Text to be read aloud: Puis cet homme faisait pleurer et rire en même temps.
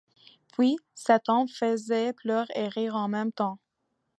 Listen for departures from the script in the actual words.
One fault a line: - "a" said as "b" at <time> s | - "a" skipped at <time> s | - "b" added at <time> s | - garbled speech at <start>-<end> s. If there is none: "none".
none